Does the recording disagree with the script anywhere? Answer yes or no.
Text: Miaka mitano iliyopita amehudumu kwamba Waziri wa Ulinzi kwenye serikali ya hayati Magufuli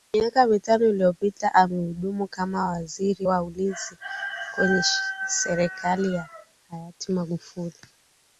yes